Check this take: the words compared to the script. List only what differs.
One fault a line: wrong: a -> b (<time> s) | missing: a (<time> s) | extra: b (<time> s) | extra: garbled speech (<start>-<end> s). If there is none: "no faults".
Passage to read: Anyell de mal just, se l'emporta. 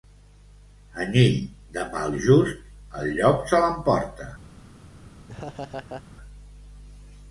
extra: el llop (3.0 s)